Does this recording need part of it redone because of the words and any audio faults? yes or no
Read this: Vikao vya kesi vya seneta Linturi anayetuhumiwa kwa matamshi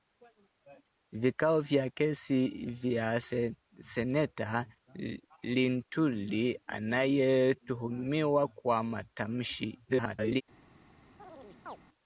yes